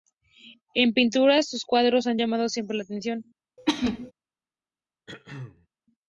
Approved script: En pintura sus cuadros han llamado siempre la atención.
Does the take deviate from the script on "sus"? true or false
false